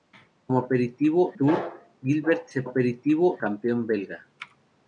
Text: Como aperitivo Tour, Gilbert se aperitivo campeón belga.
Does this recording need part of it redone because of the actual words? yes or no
no